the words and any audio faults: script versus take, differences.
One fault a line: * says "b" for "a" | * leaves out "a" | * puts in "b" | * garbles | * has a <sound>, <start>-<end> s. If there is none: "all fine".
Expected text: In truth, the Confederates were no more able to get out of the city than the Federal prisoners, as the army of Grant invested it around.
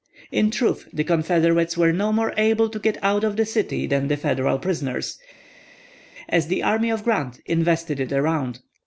all fine